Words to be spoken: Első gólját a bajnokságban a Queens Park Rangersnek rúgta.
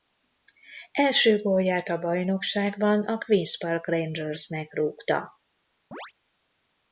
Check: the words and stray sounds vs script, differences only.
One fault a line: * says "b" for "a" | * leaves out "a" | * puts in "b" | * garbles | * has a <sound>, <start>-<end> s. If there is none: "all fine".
* has a chirp, 5.9-6.1 s